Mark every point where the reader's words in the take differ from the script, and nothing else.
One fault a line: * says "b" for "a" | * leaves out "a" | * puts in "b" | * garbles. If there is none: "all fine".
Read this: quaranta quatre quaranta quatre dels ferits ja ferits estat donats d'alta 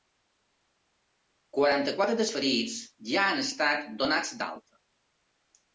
* leaves out "quaranta quatre"
* says "han" for "ferits"